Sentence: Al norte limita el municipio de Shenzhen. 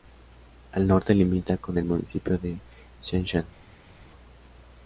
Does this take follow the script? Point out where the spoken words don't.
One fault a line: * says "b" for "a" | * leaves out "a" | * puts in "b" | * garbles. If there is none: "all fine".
* puts in "con"